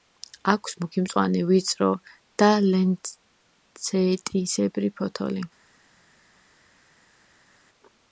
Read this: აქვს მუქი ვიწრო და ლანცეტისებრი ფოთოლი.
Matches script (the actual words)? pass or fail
fail